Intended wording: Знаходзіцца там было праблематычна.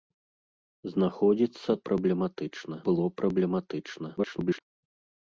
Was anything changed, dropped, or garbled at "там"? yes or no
yes